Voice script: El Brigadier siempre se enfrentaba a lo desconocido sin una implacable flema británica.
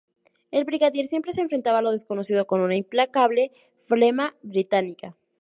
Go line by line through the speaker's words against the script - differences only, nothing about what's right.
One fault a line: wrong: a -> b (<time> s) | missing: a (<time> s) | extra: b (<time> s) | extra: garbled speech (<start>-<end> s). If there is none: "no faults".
wrong: sin -> con (2.5 s)